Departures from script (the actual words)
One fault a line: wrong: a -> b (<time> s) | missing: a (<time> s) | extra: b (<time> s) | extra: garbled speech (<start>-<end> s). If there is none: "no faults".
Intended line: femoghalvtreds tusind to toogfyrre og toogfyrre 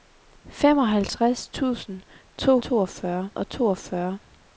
no faults